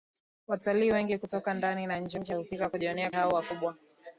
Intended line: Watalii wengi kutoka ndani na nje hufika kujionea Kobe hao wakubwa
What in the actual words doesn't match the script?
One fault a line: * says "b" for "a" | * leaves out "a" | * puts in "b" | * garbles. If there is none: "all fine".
* puts in "nje"
* leaves out "Kobe"